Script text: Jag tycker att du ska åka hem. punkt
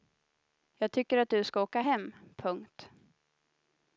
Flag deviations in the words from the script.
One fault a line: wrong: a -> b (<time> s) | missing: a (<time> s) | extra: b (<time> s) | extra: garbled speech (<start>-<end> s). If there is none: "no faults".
no faults